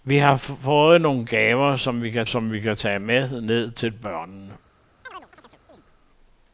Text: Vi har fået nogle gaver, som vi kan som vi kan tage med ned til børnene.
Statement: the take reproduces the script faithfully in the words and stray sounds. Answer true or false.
false